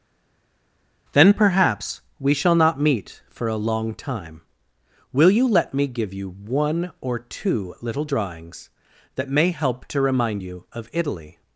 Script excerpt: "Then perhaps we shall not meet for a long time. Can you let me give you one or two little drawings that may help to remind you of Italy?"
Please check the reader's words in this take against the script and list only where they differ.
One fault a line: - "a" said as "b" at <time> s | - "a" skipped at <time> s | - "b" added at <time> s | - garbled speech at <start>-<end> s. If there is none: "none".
- "Can" said as "Will" at 5.1 s